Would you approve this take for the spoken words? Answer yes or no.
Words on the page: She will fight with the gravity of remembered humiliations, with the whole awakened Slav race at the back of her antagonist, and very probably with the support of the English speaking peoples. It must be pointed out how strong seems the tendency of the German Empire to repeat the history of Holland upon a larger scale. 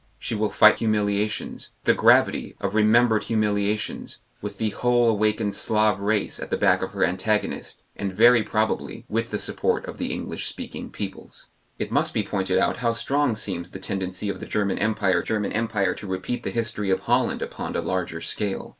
no